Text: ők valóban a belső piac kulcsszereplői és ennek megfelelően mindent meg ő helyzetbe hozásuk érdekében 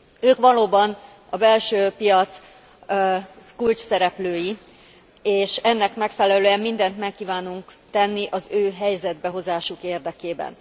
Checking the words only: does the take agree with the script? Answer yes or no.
no